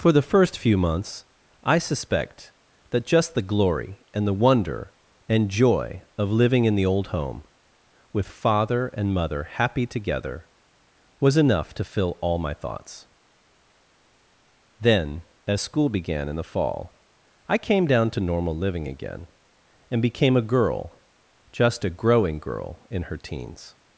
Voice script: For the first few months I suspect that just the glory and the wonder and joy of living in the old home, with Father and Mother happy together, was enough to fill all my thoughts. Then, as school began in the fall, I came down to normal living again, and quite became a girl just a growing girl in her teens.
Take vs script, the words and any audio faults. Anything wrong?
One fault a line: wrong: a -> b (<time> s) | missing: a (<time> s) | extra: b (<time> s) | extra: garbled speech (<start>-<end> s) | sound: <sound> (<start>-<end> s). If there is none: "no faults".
missing: quite (20.0 s)